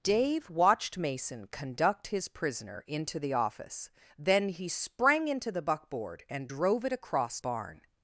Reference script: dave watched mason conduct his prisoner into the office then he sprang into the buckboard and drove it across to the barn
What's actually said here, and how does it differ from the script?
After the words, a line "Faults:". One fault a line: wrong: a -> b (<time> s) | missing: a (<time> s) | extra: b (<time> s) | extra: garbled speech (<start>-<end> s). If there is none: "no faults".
dave watched mason conduct his prisoner into the office then he sprang into the buckboard and drove it across barn
Faults:
missing: to the (7.4 s)